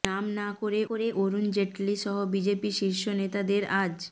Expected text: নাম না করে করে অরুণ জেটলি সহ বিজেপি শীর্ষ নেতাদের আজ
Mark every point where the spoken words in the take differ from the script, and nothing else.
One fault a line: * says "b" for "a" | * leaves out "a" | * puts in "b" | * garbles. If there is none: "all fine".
all fine